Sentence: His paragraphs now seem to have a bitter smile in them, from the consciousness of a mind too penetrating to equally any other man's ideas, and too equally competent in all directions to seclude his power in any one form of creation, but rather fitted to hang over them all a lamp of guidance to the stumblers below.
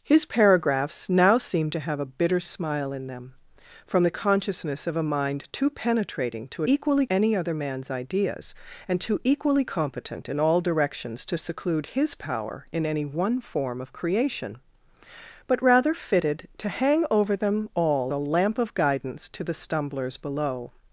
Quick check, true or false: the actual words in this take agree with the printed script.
true